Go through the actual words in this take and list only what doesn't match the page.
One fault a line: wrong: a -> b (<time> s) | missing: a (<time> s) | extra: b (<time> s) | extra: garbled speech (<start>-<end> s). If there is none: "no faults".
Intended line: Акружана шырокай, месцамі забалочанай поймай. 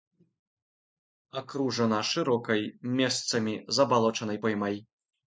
no faults